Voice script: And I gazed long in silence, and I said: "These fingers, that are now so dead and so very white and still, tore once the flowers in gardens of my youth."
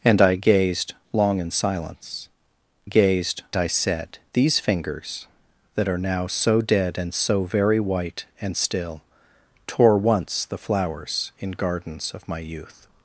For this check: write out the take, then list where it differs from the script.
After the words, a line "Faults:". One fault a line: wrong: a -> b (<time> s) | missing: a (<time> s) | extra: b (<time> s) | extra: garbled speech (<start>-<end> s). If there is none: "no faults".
And I gazed long in silence, gazed I said: "These fingers, that are now so dead and so very white and still, tore once the flowers in gardens of my youth."
Faults:
wrong: and -> gazed (2.8 s)